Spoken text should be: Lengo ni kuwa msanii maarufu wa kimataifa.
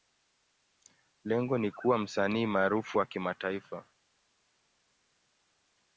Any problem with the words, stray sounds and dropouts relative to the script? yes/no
no